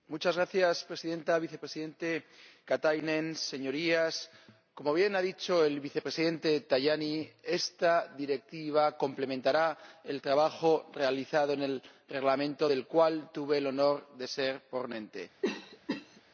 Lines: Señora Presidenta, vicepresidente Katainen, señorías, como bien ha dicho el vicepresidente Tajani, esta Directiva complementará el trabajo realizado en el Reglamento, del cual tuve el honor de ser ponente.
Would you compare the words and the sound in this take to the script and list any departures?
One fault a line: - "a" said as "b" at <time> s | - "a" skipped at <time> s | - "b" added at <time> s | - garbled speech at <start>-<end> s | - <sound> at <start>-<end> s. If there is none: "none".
- cough at 15.4-16.2 s